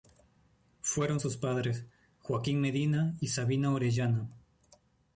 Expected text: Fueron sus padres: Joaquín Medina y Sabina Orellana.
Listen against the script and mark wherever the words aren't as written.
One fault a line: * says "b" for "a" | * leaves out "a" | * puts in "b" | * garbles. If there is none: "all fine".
all fine